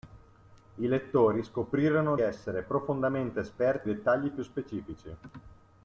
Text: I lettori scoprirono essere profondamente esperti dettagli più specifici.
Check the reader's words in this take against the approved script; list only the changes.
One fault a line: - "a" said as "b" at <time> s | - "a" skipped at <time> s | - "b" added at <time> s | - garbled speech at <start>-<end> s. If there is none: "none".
none